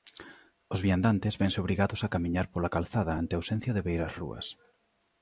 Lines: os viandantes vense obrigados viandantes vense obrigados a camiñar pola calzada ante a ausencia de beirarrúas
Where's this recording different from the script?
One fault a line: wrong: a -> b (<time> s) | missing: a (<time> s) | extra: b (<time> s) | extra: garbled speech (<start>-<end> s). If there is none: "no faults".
missing: viandantes vense obrigados (2.0 s)